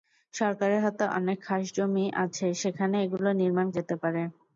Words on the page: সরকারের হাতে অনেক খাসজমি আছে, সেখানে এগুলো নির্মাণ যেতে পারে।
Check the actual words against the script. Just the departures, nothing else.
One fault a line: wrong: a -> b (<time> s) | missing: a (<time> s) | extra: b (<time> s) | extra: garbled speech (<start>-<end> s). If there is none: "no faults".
no faults